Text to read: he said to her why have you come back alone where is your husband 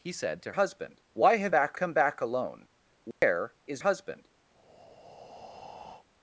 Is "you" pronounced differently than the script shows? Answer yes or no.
yes